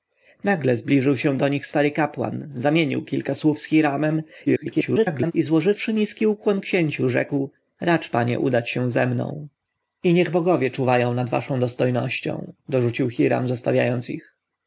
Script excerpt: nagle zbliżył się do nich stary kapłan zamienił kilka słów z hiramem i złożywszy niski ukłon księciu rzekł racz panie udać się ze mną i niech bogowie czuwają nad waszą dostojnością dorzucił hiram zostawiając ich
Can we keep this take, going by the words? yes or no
no